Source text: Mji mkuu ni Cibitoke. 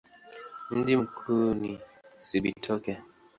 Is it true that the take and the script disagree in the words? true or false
false